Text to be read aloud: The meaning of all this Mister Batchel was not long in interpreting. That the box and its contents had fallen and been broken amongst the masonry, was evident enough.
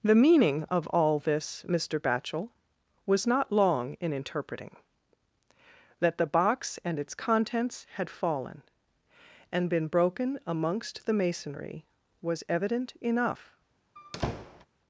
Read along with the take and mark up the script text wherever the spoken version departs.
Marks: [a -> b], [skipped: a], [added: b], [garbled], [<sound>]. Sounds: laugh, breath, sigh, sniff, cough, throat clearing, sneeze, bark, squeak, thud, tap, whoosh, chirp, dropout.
The meaning of all this Mister Batchel was not long in interpreting. That the box and its contents had fallen and been broken amongst the masonry, was evident enough. [squeak]